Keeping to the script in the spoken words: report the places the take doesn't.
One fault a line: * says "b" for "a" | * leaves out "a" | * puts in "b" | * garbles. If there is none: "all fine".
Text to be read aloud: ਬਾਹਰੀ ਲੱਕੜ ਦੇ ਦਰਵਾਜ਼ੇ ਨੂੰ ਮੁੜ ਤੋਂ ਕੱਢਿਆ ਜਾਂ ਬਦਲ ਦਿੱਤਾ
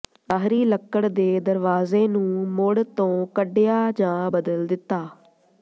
all fine